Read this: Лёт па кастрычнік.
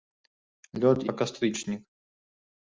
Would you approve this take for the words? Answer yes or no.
yes